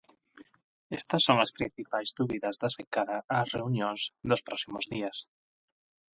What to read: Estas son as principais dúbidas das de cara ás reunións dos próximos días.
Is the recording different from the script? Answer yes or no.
no